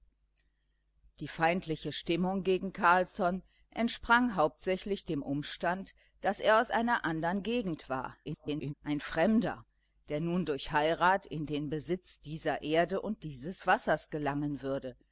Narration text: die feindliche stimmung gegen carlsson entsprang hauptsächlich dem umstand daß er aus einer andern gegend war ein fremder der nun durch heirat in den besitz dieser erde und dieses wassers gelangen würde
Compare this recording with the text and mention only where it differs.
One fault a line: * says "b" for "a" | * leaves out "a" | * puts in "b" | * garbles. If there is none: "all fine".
* garbles